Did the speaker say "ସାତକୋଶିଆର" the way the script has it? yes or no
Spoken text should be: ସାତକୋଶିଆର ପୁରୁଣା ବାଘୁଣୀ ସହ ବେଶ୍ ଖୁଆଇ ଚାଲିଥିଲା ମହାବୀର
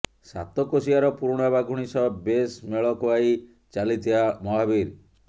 yes